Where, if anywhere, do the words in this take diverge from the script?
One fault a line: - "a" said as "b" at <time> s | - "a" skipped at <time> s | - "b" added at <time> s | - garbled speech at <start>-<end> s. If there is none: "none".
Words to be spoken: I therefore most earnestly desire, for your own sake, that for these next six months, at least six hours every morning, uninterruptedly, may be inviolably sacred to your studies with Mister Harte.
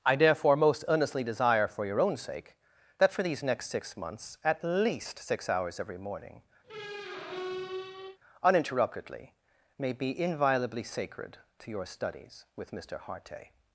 none